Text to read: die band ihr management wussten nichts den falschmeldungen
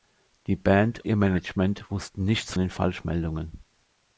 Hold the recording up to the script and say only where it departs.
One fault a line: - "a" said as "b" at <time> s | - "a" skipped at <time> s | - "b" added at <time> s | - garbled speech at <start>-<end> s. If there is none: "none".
none